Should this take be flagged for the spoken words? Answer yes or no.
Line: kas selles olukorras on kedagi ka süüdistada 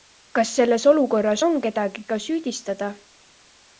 no